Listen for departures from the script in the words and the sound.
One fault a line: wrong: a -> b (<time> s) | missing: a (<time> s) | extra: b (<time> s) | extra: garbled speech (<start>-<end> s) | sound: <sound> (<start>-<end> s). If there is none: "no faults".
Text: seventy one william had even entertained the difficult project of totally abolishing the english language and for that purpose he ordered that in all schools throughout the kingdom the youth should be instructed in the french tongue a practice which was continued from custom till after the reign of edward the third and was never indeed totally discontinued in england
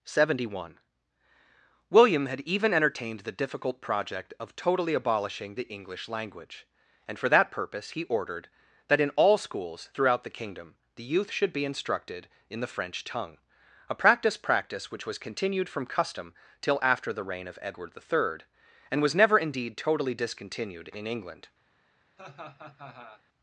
extra: practice (14.4 s)
sound: laugh (22.2-23.2 s)